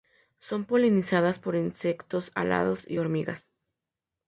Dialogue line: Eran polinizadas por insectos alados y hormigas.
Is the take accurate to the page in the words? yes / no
no